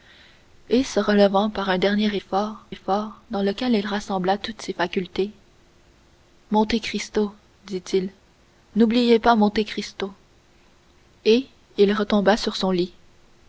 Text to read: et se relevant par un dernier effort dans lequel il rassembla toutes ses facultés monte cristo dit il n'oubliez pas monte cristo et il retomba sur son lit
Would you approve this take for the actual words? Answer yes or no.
no